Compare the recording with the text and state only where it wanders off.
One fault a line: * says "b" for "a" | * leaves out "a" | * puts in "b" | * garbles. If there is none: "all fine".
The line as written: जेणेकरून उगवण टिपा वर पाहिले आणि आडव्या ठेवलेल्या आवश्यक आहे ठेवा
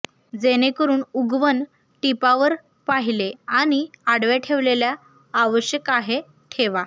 all fine